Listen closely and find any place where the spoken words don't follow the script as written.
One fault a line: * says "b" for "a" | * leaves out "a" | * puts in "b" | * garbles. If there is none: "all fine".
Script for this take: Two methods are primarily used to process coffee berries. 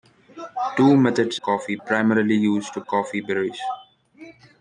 * says "coffee" for "are"
* leaves out "process"